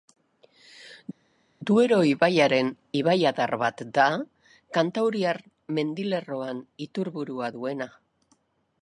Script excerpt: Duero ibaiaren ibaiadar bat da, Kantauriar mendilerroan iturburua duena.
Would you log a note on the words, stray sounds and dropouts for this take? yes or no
no